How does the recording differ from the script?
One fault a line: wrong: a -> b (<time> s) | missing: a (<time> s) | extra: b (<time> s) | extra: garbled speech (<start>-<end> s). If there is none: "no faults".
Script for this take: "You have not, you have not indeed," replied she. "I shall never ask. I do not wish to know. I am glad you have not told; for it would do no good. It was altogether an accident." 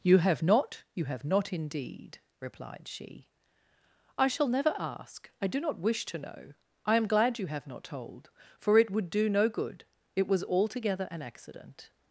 no faults